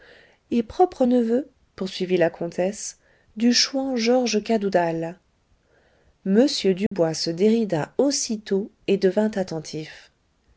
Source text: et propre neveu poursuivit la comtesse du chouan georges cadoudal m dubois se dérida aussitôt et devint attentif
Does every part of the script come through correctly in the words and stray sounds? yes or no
no